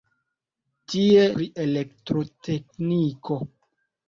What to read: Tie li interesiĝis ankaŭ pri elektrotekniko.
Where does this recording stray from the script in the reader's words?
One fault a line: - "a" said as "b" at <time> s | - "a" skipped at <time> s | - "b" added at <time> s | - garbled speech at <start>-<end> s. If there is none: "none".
- "li interesiĝis ankaŭ" skipped at 1.2 s